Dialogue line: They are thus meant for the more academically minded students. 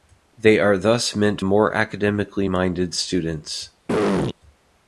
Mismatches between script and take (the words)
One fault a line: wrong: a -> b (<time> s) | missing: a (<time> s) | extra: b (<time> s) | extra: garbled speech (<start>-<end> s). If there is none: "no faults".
missing: for the (1.4 s)